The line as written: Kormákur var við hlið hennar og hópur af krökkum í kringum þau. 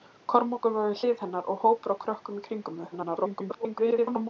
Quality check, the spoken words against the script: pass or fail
fail